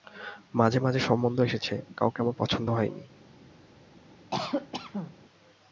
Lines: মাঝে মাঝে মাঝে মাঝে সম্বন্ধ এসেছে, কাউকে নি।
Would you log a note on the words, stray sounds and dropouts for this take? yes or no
yes